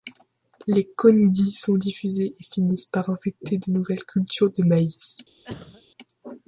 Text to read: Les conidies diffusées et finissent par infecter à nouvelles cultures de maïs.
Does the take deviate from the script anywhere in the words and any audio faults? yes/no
yes